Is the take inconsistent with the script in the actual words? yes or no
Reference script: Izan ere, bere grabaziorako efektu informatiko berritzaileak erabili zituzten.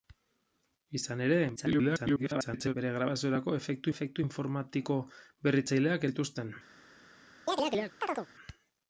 yes